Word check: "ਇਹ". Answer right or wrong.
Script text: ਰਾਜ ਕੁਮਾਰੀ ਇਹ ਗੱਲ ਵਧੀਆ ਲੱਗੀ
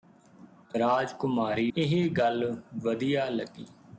right